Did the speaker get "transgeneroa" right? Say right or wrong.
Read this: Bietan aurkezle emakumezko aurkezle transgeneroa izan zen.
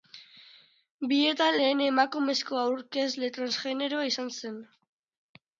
right